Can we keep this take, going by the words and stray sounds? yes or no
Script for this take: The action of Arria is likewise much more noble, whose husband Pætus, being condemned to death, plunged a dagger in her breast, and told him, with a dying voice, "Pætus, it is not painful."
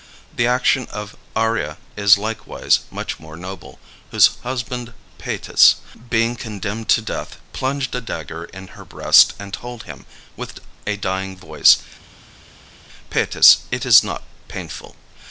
yes